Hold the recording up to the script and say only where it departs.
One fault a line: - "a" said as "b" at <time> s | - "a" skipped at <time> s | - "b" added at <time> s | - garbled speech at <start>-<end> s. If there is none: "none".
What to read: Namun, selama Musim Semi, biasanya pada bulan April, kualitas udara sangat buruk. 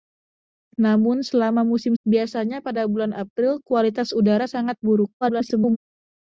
- "Semi" skipped at 1.9 s
- garbled speech at 5.2-5.8 s